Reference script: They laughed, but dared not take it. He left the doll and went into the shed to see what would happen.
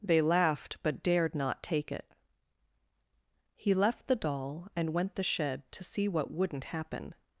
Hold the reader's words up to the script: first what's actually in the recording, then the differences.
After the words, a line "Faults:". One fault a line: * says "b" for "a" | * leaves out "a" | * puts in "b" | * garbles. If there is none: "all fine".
They laughed, but dared not take it. He left the doll and went the shed to see what wouldn't happen.
Faults:
* leaves out "into"
* says "wouldn't" for "would"